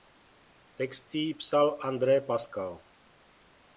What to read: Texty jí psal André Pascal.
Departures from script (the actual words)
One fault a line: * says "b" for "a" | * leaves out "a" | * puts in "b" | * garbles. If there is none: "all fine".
all fine